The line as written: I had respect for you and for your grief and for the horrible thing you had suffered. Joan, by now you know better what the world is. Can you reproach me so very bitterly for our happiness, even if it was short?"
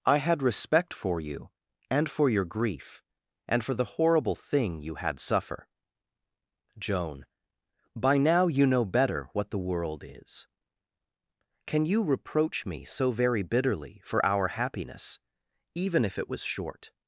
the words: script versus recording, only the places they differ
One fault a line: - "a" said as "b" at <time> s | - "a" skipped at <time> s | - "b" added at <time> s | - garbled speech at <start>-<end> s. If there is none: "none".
- "suffered" said as "suffer" at 5.2 s